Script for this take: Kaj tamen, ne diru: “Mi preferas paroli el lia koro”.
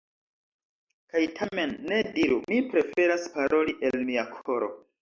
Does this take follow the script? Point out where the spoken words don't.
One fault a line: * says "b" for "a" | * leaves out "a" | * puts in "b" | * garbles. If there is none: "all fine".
* says "mia" for "lia"